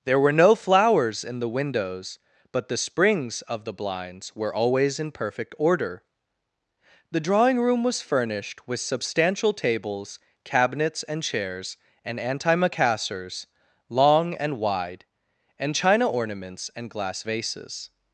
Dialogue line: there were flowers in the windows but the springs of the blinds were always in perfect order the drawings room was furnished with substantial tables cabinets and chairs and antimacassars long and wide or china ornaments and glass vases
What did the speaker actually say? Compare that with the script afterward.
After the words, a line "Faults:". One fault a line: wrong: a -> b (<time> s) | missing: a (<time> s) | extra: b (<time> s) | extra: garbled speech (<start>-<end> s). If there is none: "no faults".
there were no flowers in the windows but the springs of the blinds were always in perfect order the drawing room was furnished with substantial tables cabinets and chairs and antimacassars long and wide and china ornaments and glass vases
Faults:
extra: no (0.3 s)
wrong: drawings -> drawing (7.2 s)
wrong: or -> and (15.6 s)